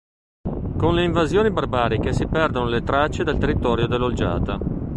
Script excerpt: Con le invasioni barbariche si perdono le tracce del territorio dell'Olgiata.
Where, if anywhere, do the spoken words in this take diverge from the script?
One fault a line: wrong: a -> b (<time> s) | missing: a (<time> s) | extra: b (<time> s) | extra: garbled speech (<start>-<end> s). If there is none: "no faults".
no faults